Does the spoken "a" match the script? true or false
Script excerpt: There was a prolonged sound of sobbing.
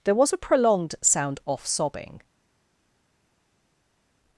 true